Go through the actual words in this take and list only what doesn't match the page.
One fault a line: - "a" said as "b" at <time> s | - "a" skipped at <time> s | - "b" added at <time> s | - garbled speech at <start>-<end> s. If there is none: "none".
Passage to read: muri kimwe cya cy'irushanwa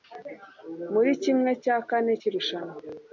- "kane" added at 1.9 s